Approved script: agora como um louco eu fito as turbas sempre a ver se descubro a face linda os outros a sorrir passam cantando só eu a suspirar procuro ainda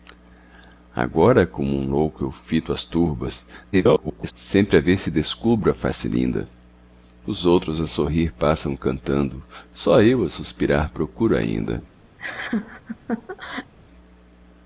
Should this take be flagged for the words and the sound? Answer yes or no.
yes